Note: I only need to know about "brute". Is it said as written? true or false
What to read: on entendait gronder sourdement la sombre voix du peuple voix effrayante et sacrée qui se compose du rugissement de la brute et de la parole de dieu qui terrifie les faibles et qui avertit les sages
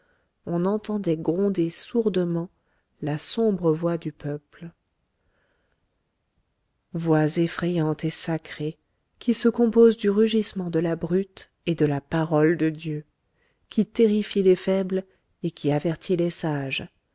true